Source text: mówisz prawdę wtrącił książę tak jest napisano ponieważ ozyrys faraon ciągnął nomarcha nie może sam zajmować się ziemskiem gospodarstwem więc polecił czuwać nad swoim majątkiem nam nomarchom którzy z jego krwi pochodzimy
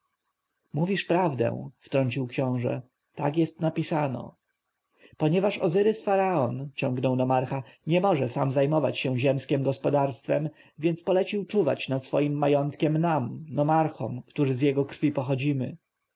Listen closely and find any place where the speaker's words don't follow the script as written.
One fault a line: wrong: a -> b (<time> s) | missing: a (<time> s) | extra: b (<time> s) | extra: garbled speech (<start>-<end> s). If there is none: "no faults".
no faults